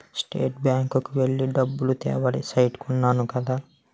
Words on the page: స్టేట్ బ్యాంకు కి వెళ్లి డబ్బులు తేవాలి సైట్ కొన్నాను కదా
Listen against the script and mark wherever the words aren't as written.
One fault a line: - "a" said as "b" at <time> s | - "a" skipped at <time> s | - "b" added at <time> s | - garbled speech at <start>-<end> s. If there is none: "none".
none